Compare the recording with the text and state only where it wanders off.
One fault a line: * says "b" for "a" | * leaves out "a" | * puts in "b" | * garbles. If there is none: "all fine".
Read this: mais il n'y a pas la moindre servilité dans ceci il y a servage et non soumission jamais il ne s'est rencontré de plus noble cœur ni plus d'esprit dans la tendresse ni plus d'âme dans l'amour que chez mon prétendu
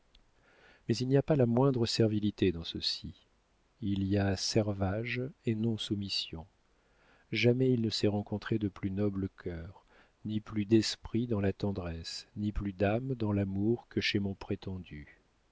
all fine